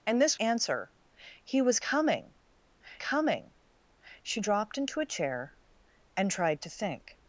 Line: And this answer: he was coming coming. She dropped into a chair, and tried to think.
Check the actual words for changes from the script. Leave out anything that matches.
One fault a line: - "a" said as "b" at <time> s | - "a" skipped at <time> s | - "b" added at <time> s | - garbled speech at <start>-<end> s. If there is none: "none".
none